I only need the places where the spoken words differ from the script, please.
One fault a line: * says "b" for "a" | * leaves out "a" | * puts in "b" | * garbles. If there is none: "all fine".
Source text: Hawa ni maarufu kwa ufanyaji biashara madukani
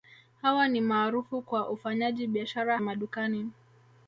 all fine